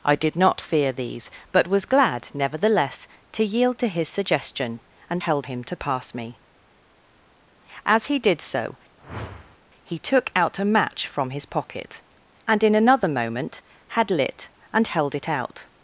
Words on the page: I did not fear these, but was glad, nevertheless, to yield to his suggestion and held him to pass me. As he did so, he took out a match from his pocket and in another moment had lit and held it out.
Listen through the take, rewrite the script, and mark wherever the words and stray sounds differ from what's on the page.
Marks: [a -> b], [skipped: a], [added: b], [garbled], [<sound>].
I did not fear these, but was glad, nevertheless, to yield to his suggestion and held him to pass me. As he did so, [whoosh] he took out a match from his pocket and in another moment had lit and held it out.